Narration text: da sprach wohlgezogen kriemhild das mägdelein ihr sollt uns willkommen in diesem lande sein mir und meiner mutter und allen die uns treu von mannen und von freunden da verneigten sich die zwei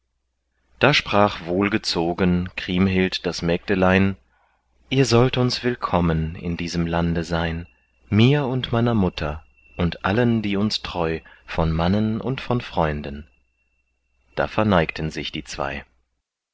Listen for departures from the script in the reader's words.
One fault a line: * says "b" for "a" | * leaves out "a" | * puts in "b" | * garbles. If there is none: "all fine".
all fine